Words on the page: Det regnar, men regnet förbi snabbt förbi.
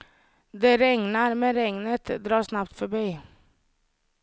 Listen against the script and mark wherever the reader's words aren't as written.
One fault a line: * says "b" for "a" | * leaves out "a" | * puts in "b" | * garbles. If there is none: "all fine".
* says "drar" for "förbi"